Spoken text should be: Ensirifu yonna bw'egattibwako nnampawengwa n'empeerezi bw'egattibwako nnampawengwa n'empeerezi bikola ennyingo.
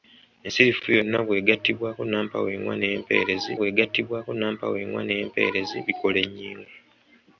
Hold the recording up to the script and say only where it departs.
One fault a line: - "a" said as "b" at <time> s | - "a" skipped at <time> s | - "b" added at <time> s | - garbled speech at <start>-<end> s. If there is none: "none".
none